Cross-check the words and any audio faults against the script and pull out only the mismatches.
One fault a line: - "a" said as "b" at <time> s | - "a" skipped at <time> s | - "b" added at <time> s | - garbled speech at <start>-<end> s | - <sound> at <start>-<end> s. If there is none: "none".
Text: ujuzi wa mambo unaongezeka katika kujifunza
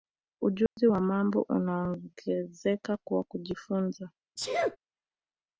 - dropout at 0.7-0.8 s
- "katika" said as "kwa" at 3.0 s
- sneeze at 4.4-4.8 s